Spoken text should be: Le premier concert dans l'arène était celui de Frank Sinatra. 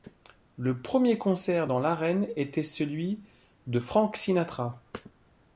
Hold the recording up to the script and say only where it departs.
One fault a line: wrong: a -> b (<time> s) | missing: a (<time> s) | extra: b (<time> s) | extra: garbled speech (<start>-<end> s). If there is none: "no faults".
no faults